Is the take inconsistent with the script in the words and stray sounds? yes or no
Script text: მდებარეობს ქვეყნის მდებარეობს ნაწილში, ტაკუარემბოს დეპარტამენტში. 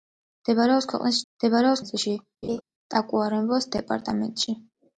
yes